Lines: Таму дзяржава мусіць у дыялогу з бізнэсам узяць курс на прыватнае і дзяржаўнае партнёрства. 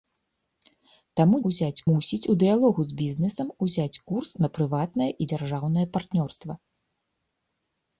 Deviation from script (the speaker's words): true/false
true